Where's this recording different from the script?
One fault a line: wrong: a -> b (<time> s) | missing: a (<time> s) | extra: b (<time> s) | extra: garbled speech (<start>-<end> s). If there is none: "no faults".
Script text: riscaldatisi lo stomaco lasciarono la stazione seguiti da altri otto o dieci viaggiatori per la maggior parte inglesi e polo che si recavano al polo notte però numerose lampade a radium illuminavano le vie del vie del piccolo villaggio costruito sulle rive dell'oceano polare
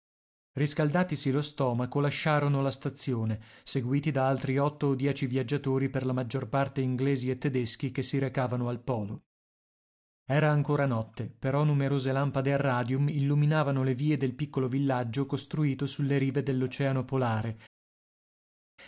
wrong: polo -> tedeschi (7.4 s)
extra: era ancora (10.3 s)
missing: vie del (14.3 s)